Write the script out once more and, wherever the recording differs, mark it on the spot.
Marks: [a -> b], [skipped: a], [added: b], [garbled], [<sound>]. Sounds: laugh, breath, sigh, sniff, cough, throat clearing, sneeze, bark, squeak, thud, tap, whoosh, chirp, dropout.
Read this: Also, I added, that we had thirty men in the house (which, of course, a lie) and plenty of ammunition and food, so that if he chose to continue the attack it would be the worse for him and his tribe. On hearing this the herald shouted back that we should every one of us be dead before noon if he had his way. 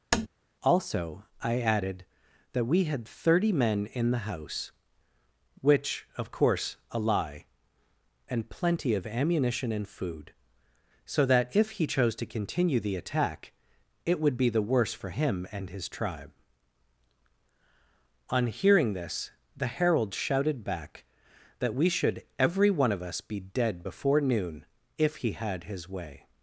[tap] Also, I added, that we had thirty men in the house (which, of course, a lie) and plenty of ammunition and food, so that if he chose to continue the attack it would be the worse for him and his tribe. On hearing this the herald shouted back that we should every one of us be dead before noon if he had his way.